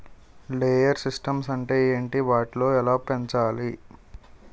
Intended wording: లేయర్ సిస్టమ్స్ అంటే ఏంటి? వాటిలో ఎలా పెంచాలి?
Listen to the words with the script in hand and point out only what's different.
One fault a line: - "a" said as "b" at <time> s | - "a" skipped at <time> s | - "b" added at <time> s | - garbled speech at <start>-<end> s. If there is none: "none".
none